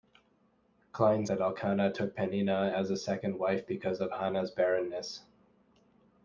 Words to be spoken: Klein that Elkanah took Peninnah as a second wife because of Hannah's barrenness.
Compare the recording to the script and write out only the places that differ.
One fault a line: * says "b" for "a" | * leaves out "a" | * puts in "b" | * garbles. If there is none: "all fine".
all fine